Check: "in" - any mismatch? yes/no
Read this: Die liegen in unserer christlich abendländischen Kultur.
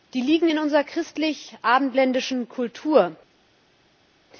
no